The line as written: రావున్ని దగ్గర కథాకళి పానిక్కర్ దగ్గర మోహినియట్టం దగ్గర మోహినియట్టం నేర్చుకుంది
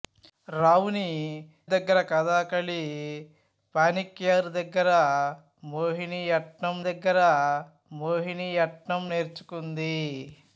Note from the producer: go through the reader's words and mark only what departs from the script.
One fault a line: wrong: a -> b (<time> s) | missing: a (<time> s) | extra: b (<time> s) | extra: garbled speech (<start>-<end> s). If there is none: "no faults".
no faults